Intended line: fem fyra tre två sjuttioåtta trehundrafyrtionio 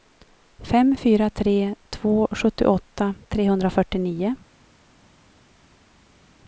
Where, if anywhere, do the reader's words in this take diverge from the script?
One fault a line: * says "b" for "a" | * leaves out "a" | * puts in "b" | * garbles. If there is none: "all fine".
all fine